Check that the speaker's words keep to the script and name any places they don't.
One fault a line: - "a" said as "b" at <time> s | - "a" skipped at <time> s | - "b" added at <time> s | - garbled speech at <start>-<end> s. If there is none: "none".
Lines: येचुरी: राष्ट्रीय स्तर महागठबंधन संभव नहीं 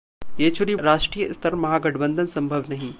none